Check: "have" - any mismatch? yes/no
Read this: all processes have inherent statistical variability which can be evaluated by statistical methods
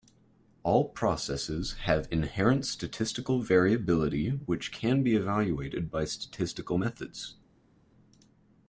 no